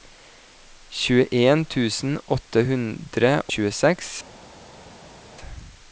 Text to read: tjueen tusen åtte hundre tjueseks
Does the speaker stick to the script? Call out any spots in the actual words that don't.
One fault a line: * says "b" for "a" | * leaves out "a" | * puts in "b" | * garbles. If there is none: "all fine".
all fine